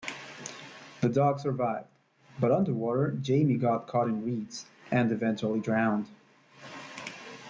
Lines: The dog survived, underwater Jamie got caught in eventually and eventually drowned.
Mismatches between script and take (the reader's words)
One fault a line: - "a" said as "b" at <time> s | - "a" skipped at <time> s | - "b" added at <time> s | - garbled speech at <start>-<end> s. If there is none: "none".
- "but" added at 2.4 s
- "eventually" said as "reeds" at 4.2 s